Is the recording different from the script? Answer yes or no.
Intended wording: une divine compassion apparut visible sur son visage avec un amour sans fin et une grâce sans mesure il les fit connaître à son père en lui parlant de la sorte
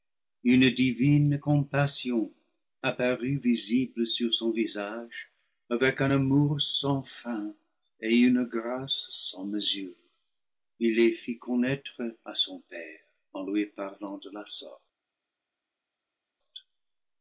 no